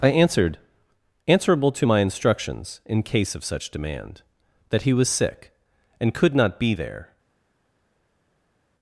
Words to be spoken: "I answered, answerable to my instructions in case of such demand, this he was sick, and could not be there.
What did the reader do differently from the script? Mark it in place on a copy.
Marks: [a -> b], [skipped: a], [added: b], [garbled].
"I answered, answerable to my instructions in case of such demand, [this -> that] he was sick, and could not be there.